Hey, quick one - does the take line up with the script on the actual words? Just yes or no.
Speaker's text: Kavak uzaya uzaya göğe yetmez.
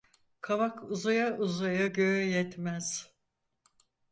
yes